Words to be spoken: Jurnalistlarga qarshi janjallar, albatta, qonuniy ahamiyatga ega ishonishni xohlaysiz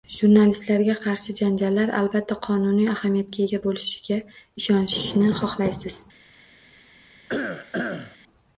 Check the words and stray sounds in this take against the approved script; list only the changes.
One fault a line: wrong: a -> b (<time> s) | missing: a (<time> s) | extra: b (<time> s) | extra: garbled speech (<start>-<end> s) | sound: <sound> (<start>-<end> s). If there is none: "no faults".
extra: bo'lishiga (3.7 s)
sound: cough (7.3-8.2 s)